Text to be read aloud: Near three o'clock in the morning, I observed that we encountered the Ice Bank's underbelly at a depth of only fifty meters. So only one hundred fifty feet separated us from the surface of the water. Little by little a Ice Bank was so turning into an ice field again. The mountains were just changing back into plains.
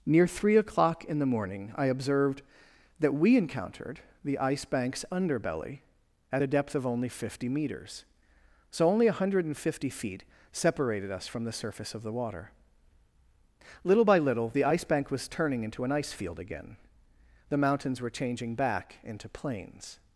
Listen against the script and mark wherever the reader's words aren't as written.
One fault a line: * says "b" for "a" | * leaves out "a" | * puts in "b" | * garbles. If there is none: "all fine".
* says "the" for "a"
* leaves out "so"
* leaves out "just"